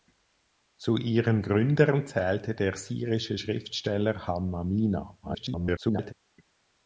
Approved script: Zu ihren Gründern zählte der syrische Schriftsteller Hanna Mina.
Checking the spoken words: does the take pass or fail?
fail